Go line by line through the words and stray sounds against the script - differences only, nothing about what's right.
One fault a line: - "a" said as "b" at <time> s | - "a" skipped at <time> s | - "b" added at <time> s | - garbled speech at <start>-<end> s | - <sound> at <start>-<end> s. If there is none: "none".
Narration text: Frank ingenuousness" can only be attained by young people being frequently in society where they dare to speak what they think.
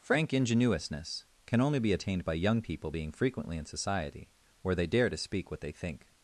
none